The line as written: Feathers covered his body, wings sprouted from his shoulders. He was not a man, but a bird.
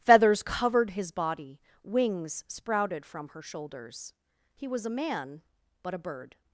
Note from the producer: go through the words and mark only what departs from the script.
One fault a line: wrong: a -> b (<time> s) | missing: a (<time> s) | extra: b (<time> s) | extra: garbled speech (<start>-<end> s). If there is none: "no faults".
wrong: his -> her (3.3 s)
missing: not (4.9 s)